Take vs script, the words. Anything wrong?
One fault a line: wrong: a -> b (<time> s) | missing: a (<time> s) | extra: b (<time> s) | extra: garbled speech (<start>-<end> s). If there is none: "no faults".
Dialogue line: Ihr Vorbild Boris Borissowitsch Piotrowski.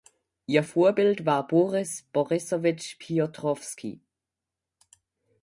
extra: war (1.3 s)